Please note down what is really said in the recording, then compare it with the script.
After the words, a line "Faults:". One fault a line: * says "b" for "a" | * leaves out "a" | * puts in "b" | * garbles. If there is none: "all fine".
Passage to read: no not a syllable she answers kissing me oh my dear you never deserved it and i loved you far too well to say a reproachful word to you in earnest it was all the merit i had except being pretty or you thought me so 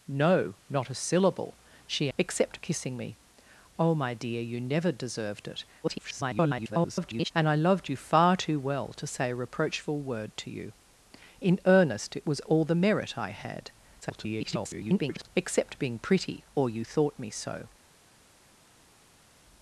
no not a syllable she except kissing me oh my dear you never deserved it [garbled] and i loved you far too well to say a reproachful word to you in earnest it was all the merit i had [garbled] except being pretty or you thought me so
Faults:
* says "except" for "answers"
* garbles
* garbles